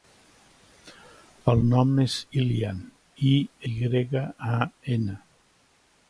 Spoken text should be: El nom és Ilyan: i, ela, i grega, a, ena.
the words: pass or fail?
fail